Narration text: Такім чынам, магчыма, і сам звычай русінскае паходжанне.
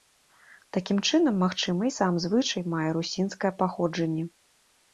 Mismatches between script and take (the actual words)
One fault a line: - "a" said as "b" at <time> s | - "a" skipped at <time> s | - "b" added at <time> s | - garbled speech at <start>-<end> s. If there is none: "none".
- "мае" added at 2.8 s